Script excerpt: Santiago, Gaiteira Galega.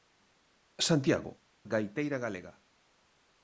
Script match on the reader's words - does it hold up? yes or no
yes